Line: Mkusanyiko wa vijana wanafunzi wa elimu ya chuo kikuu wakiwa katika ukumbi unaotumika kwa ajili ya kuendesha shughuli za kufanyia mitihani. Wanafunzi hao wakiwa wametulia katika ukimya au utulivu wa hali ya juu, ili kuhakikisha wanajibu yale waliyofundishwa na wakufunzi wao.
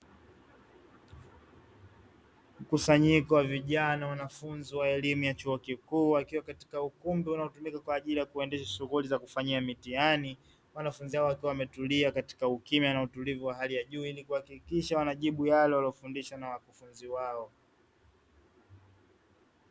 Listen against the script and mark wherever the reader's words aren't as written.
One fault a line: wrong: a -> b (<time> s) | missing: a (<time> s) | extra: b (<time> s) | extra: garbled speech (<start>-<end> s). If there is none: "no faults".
wrong: au -> na (12.9 s)